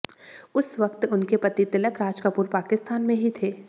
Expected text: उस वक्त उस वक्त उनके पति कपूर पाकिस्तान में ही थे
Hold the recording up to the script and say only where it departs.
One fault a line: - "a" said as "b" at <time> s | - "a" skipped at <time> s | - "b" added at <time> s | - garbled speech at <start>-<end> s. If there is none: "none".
- "उस वक्त उनके पति" said as "उनके पति तिलक राज" at 1.1 s